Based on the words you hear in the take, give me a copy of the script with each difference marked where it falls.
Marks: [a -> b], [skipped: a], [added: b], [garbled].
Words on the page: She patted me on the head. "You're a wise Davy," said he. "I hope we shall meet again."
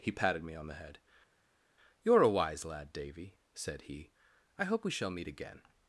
[She -> He] patted me on the head. "You're a wise [added: lad] Davy," said he. "I hope we shall meet again."